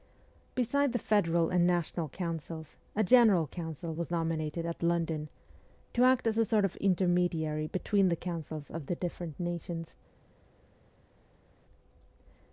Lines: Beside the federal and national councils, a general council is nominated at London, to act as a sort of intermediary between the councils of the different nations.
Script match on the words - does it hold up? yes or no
no